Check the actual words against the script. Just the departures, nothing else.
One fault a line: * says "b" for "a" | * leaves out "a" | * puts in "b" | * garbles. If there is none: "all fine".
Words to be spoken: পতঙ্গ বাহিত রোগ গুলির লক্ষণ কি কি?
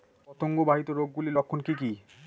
all fine